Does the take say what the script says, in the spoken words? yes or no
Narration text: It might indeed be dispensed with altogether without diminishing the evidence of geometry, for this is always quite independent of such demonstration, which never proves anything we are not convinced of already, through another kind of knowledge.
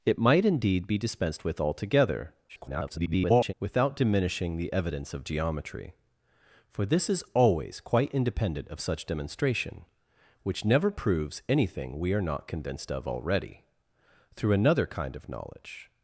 no